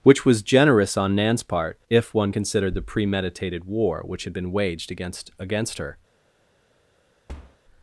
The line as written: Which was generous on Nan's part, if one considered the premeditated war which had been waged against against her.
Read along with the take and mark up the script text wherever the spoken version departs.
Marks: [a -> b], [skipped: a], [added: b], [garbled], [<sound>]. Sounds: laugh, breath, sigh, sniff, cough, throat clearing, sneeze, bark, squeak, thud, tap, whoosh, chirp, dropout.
Which was generous on Nan's part, if one considered the premeditated war which had been waged against against her. [thud]